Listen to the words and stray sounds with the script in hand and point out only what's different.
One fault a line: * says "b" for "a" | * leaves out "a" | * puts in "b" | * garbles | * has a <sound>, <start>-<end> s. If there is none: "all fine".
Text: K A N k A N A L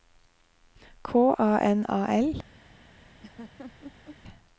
* leaves out "k A N"
* has a laugh, 3.2-4.2 s